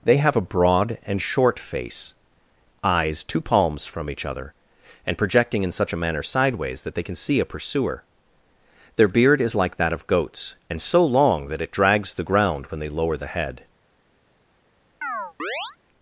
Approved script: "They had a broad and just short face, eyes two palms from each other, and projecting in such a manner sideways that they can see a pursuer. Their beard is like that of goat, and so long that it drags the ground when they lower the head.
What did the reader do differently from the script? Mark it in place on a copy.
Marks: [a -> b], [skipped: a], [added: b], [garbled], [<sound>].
"They [had -> have] a broad and [skipped: just] short face, eyes two palms from each other, and projecting in such a manner sideways that they can see a pursuer. Their beard is like that of [goat, -> goats] and so long that it drags the ground when they lower the head. [chirp]